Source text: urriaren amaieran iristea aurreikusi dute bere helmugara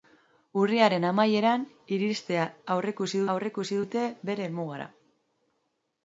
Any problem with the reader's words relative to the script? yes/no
yes